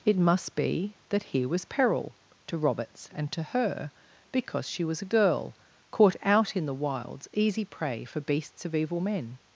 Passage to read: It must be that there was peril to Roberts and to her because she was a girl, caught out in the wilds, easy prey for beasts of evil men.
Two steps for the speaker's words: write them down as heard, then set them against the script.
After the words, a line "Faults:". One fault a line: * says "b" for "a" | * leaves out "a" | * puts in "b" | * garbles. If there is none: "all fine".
It must be that here was peril to Roberts and to her because she was a girl, caught out in the wilds, easy prey for beasts of evil men.
Faults:
* says "here" for "there"